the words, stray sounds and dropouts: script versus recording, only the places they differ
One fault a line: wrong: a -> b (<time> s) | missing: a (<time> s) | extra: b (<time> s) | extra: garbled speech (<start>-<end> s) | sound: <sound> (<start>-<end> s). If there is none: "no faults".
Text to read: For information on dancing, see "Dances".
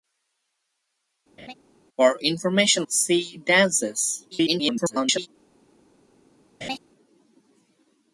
sound: laugh (1.4-1.5 s)
missing: on dancing (2.9 s)
extra: garbled speech (4.3-5.3 s)
sound: laugh (6.6-6.8 s)